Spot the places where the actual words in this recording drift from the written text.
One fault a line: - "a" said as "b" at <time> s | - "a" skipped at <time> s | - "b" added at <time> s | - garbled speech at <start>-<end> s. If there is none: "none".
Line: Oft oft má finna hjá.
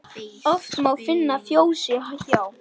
- "oft" skipped at 0.7 s
- "fjósi" added at 1.4 s